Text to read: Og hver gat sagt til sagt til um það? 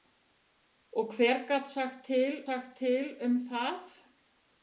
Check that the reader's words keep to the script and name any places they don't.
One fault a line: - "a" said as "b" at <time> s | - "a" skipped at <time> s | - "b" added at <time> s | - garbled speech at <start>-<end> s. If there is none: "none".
none